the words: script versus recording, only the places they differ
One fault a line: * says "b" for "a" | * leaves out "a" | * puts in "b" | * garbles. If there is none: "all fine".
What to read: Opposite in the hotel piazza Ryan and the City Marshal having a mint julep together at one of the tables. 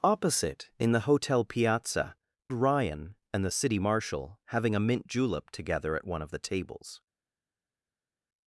all fine